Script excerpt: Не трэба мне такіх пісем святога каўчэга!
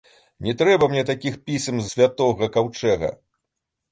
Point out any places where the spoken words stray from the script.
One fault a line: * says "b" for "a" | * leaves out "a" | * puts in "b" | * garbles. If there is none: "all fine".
all fine